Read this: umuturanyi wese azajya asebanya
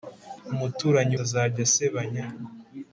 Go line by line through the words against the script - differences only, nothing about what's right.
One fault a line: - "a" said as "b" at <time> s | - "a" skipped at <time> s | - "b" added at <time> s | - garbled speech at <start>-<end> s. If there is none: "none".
- "wese" skipped at 1.1 s